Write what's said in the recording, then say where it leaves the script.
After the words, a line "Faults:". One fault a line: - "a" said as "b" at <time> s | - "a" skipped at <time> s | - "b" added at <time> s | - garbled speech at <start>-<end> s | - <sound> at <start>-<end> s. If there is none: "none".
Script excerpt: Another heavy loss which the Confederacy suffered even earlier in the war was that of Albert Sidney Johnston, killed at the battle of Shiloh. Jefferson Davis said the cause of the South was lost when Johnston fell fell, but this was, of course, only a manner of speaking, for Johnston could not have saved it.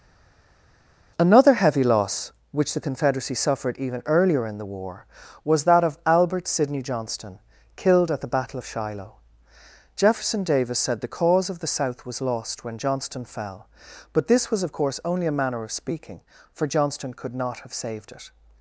Another heavy loss which the Confederacy suffered even earlier in the war was that of Albert Sidney Johnston, killed at the battle of Shiloh. Jefferson Davis said the cause of the South was lost when Johnston fell, but this was, of course, only a manner of speaking, for Johnston could not have saved it.
Faults:
- "fell" skipped at 13.7 s